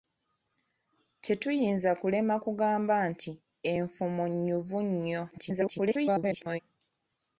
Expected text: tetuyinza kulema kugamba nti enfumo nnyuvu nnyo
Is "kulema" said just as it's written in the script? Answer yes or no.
yes